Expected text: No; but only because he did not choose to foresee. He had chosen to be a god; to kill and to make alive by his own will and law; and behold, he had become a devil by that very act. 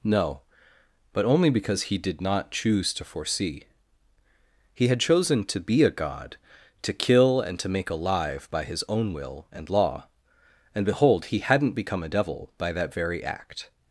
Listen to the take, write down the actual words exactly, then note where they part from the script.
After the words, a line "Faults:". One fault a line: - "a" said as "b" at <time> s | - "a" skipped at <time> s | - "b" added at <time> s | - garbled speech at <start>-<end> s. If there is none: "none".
No; but only because he did not choose to foresee. He had chosen to be a god; to kill and to make alive by his own will and law; and behold, he hadn't become a devil by that very act.
Faults:
- "had" said as "hadn't" at 11.4 s